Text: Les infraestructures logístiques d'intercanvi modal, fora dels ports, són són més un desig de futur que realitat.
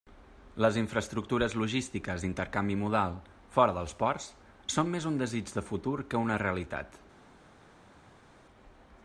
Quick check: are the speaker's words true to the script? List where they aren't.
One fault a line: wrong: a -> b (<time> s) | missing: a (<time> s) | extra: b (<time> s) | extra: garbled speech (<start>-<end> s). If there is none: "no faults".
missing: són (4.9 s)
extra: una (6.3 s)